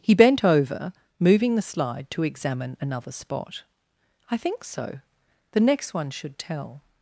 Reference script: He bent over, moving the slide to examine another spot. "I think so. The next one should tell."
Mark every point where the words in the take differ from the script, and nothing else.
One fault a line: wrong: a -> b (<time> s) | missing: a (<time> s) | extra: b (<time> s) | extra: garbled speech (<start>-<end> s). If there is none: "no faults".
no faults